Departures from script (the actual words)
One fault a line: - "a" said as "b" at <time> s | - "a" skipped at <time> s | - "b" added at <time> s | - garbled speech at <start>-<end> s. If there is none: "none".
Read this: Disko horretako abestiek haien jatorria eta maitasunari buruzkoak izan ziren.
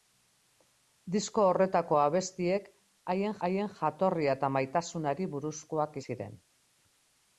- "haien" added at 3.5 s
- "izan" skipped at 6.0 s